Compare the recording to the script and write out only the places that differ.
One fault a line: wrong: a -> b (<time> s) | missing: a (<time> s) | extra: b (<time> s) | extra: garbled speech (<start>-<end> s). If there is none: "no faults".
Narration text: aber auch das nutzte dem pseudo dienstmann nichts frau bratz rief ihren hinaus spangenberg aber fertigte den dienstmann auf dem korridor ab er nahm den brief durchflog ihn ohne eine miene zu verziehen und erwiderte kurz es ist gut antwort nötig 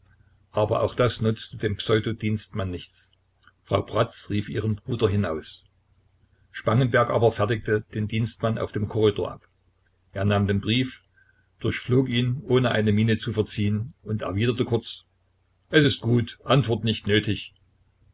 extra: bruder (4.8 s)
extra: nicht (16.8 s)